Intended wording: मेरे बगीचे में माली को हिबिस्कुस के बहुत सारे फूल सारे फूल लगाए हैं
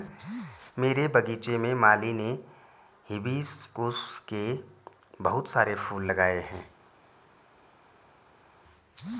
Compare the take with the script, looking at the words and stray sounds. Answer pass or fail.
fail